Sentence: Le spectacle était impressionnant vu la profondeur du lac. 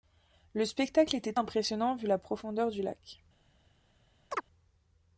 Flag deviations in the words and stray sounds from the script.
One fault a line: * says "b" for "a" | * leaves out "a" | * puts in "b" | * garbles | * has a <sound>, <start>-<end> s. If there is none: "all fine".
* has a chirp, 4.3-4.4 s